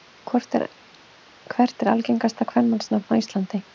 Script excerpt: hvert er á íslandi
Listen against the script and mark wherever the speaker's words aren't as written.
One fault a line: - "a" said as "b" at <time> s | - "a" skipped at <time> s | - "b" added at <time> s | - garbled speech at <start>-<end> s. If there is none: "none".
- "algengasta kvenmannsnafn" added at 1.9 s